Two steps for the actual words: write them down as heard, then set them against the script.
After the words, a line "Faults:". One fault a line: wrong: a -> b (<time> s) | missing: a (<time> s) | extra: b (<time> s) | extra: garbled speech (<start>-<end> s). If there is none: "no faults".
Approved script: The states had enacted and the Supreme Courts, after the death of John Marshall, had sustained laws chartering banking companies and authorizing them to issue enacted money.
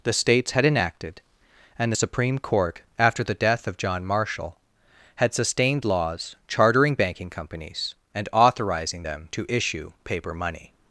The states had enacted and the Supreme Court, after the death of John Marshall, had sustained laws chartering banking companies and authorizing them to issue paper money.
Faults:
wrong: Courts -> Court (2.4 s)
wrong: enacted -> paper (10.0 s)